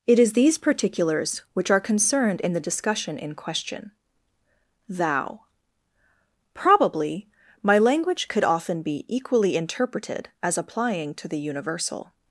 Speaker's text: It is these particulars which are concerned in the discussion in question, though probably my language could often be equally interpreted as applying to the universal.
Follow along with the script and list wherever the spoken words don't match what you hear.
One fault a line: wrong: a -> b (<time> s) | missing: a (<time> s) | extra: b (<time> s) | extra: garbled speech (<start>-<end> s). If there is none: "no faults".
wrong: though -> thou (4.9 s)